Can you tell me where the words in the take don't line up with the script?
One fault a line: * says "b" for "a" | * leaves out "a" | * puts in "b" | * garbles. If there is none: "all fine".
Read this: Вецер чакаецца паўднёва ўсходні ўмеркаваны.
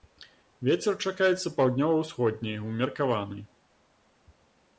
all fine